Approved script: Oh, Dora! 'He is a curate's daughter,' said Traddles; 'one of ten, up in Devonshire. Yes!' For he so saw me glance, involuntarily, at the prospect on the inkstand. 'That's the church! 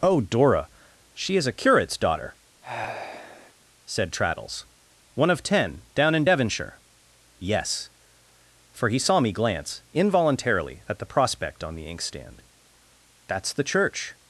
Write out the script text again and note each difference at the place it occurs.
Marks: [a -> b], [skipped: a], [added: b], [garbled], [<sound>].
Oh, Dora! ['He -> She] is a curate's daughter,' [sigh] said Traddles; 'one of ten, [up -> down] in Devonshire. Yes!' For he [skipped: so] saw me glance, involuntarily, at the prospect on the inkstand. 'That's the church!